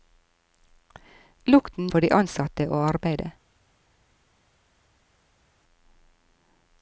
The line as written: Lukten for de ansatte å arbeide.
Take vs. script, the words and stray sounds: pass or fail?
pass